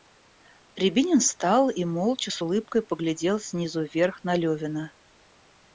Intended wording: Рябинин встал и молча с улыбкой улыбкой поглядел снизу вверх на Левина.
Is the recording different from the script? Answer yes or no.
yes